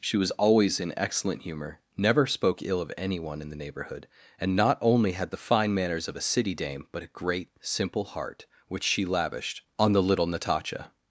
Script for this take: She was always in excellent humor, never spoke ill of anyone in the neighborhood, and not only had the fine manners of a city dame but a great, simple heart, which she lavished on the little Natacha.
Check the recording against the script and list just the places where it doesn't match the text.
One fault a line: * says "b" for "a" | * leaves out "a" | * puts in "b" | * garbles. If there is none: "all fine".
all fine